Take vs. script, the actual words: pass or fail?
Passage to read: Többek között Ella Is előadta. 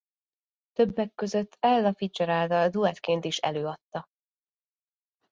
fail